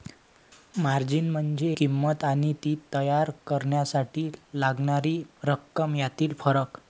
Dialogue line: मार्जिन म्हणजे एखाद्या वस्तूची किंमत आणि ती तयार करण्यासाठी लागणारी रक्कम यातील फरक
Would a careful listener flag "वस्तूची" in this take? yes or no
yes